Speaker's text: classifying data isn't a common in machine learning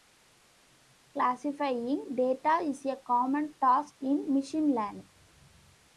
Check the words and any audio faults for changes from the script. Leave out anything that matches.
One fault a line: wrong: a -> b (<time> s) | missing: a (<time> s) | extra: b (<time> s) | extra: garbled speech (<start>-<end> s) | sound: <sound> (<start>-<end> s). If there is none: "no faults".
wrong: isn't -> is (2.6 s)
extra: task (3.6 s)